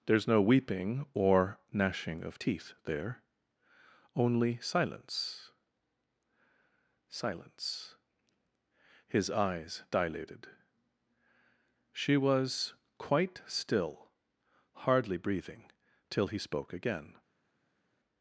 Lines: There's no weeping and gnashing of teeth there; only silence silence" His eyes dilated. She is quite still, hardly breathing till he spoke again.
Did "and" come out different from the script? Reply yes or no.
yes